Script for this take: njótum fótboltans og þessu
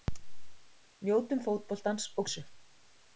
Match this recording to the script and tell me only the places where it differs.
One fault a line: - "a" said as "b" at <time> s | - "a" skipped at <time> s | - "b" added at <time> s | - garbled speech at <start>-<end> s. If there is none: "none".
none